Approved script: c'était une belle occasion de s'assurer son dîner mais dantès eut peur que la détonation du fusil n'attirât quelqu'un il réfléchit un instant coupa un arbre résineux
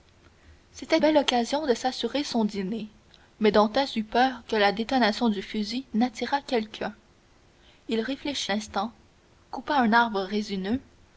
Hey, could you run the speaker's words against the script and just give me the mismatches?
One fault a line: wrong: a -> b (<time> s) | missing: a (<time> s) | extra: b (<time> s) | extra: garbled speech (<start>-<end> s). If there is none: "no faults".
missing: une (1.0 s)
missing: un (8.5 s)